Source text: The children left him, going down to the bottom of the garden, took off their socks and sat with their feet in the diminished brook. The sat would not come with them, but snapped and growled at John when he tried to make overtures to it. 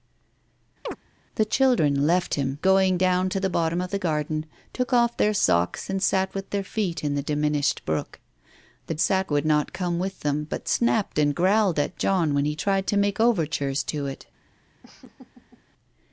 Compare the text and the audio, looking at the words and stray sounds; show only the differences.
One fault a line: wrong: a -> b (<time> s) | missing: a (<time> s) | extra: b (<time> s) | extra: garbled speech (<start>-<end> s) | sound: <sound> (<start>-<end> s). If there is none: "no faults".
sound: chirp (0.9-1.0 s)
sound: laugh (14.8-15.6 s)